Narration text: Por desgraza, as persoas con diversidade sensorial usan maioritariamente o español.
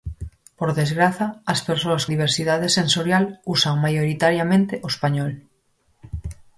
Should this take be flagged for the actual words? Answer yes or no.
yes